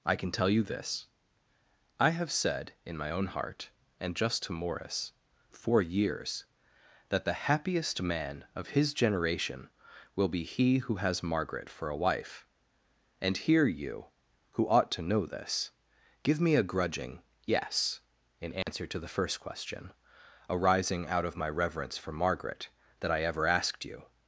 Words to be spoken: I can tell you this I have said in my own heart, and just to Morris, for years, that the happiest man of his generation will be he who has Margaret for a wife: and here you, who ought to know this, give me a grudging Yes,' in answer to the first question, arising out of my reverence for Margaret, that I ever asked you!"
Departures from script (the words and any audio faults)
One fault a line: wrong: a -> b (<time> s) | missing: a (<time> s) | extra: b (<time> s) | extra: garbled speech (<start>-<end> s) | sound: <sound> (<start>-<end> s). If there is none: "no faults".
sound: dropout (18.6-18.7 s)